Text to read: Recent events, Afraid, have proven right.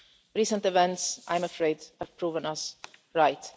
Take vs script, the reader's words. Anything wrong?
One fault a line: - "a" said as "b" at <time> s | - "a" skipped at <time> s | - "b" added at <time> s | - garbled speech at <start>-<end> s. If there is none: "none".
- "I'm" added at 1.3 s
- "us" added at 2.5 s